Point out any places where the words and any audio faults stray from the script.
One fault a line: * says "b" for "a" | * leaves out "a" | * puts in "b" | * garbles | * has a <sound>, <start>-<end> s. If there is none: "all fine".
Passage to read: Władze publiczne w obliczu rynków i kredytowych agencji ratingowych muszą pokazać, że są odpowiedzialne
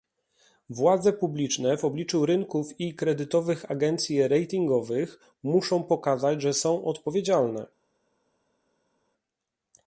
all fine